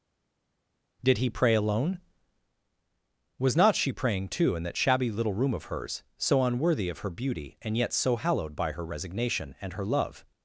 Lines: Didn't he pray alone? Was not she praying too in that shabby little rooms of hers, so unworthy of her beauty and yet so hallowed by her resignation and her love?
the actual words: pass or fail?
fail